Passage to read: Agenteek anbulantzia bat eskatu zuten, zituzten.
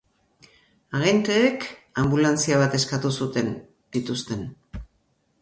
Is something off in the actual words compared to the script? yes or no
no